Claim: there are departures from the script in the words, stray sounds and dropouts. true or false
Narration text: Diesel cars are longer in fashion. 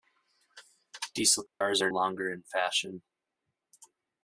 true